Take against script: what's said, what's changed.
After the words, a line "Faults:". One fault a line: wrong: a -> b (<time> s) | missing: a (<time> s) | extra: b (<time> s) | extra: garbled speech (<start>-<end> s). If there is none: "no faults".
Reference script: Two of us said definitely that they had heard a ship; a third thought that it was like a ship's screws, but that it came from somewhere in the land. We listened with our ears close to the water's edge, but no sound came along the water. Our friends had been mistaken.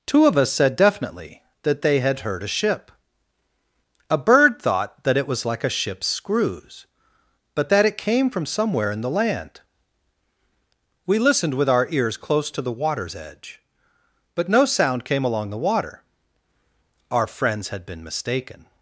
Two of us said definitely that they had heard a ship; a bird thought that it was like a ship's screws, but that it came from somewhere in the land. We listened with our ears close to the water's edge, but no sound came along the water. Our friends had been mistaken.
Faults:
wrong: third -> bird (4.2 s)